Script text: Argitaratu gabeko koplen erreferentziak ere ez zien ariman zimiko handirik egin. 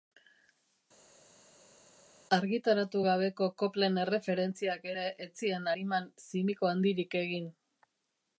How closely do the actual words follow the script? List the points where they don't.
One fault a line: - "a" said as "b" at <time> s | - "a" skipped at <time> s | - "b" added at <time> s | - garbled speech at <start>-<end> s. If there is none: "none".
none